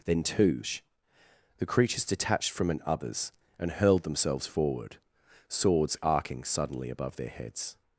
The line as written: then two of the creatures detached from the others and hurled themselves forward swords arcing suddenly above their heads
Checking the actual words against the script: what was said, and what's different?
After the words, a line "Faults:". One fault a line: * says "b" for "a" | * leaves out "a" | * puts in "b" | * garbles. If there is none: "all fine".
then two the creatures detached from an others and hurled themselves forward swords arcing suddenly above their heads
Faults:
* leaves out "of"
* says "an" for "the"